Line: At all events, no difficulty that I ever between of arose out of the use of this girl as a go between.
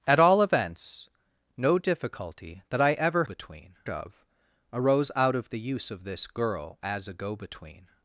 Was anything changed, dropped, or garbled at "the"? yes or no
no